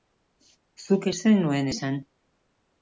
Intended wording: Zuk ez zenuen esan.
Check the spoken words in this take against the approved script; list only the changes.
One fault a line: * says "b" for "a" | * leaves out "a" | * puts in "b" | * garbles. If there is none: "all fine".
all fine